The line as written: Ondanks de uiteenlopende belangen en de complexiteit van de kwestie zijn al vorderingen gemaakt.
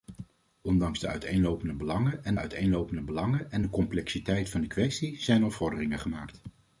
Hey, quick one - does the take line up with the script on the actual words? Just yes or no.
no